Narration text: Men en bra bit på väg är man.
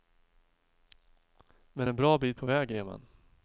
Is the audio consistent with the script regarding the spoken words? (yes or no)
yes